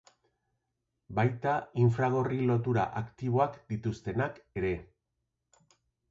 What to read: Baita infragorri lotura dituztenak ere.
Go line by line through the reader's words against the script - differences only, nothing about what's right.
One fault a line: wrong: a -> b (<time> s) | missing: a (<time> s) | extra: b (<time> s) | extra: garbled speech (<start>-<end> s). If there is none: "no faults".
extra: aktiboak (3.0 s)